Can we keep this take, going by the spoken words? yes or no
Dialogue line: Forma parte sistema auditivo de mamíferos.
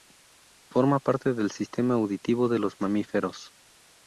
no